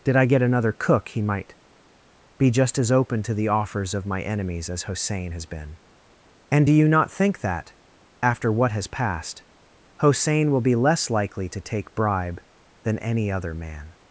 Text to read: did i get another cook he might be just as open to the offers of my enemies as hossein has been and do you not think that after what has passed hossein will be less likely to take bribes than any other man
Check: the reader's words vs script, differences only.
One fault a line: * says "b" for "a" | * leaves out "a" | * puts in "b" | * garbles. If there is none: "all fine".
* says "bribe" for "bribes"